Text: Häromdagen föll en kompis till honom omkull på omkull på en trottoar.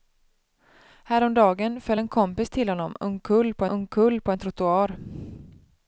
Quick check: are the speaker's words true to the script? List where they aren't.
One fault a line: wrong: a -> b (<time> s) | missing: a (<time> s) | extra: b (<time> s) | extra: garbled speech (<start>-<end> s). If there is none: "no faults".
no faults